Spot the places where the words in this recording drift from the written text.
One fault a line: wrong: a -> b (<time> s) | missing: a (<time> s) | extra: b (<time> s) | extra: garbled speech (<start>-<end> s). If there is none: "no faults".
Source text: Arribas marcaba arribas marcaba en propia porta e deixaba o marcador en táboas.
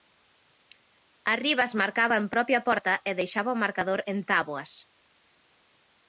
missing: arribas marcaba (2.1 s)